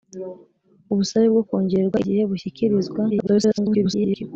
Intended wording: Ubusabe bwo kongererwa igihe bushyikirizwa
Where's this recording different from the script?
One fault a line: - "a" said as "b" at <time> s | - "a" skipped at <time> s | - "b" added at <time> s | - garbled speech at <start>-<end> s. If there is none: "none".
- garbled speech at 3.1-4.2 s